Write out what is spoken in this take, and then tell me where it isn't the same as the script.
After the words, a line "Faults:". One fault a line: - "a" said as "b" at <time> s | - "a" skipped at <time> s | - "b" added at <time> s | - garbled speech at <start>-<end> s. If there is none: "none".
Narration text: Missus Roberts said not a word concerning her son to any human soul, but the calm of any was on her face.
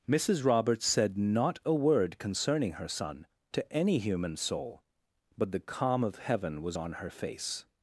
Missus Roberts said not a word concerning her son to any human soul, but the calm of heaven was on her face.
Faults:
- "any" said as "heaven" at 6.2 s